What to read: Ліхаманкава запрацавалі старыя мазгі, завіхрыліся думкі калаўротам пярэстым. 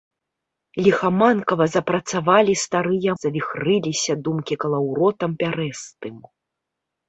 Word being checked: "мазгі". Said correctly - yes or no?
no